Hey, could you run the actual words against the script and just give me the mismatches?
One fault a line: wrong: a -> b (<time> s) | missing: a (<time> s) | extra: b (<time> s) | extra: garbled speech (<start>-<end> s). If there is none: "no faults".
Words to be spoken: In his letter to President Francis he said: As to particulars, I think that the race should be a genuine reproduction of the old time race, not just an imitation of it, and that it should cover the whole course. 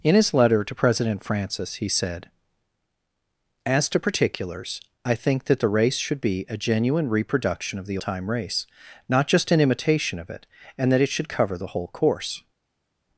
missing: old (8.0 s)